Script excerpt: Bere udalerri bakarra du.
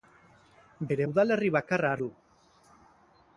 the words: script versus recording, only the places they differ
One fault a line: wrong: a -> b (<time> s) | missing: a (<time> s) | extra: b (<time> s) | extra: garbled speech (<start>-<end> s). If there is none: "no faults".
no faults